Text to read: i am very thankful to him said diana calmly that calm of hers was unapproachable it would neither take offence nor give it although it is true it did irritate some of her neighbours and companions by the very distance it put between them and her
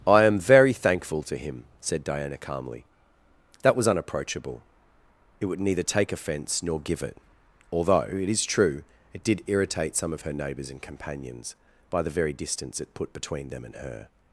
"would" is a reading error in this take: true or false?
false